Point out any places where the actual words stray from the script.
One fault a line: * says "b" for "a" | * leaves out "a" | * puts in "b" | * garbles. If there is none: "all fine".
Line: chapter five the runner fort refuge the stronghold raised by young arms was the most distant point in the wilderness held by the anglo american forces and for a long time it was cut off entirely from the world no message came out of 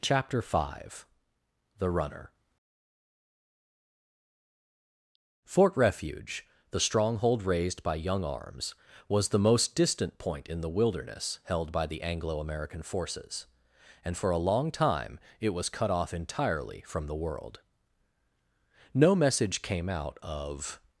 all fine